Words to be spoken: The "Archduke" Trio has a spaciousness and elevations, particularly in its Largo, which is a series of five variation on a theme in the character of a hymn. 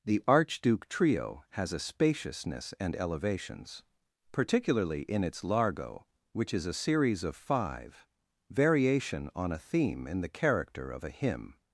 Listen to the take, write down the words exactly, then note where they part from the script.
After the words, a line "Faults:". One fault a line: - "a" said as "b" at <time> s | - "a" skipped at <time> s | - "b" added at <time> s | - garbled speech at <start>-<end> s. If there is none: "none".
The "Archduke" Trio has a spaciousness and elevations, particularly in its Largo, which is a series of five variation on a theme in the character of a hymn.
Faults:
none